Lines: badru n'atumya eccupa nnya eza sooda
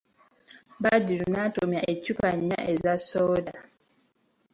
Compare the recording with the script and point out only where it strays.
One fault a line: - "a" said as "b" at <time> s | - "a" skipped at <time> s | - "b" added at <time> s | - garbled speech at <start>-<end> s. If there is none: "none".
none